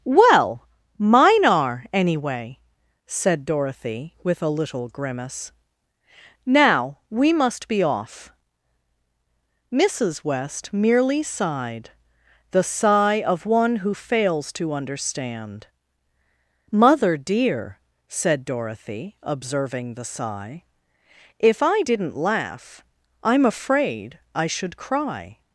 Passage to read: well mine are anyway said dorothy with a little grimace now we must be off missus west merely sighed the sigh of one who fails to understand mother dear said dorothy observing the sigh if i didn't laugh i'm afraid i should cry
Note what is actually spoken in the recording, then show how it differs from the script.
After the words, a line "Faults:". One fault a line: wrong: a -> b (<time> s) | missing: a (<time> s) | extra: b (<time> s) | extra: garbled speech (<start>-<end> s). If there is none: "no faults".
well mine are anyway said dorothy with a little grimace now we must be off missus west merely sighed the sigh of one who fails to understand mother dear said dorothy observing the sigh if i didn't laugh i'm afraid i should cry
Faults:
no faults